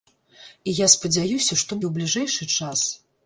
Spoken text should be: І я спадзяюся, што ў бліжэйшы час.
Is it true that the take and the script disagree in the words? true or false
false